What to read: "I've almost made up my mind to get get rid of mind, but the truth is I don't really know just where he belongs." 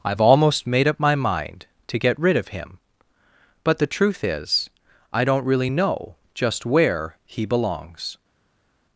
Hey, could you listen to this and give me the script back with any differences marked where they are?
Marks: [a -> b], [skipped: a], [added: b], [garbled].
"I've almost made up my mind to get [skipped: get] rid of [mind, -> him] but the truth is I don't really know just where he belongs."